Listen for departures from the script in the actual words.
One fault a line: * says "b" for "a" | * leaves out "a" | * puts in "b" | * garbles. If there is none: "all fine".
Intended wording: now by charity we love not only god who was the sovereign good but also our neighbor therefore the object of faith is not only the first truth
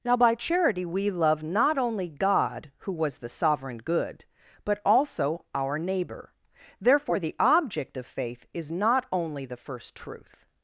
all fine